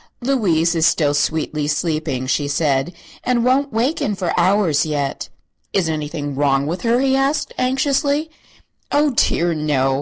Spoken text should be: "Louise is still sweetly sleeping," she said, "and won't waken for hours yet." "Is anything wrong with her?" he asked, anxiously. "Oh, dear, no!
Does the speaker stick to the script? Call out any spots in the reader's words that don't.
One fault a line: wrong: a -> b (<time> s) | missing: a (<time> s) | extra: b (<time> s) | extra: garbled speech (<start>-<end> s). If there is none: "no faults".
no faults